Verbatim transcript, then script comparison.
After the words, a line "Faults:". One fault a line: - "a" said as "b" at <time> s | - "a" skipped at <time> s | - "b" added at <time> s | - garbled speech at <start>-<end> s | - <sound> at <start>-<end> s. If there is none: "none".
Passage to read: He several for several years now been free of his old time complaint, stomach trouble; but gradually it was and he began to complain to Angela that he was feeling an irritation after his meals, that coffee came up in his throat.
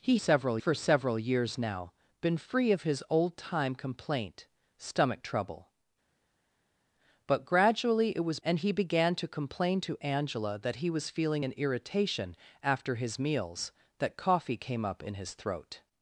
He several for several years now been free of his old time complaint, stomach trouble; but gradually it was and he began to complain to Angela that he was feeling an irritation after his meals, that coffee came up in his throat.
Faults:
none